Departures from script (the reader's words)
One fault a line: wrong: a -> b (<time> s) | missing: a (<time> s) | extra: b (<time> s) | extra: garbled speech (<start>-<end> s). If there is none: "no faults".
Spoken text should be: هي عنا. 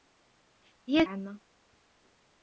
no faults